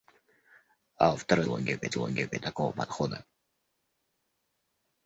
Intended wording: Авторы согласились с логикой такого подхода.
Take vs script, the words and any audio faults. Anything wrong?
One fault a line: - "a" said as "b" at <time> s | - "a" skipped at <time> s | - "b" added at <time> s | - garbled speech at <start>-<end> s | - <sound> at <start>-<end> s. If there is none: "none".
- "согласились" said as "логикой" at 1.5 s